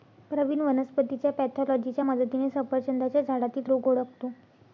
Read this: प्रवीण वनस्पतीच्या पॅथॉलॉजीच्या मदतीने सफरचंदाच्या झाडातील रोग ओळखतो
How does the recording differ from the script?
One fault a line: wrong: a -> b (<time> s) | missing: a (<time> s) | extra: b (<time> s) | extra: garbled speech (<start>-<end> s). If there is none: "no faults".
no faults